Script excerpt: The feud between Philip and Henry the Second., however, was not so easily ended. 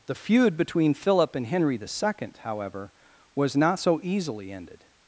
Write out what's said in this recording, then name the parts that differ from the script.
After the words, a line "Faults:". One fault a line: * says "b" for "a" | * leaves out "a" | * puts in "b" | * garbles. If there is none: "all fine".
The feud between Philip and Henry the Second., however, was not so easily ended.
Faults:
all fine